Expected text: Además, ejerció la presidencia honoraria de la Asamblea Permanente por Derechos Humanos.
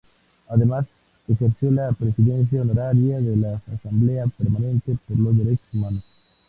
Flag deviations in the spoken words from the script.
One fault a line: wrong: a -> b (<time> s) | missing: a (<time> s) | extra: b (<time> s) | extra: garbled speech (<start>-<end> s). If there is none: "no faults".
extra: los (5.2 s)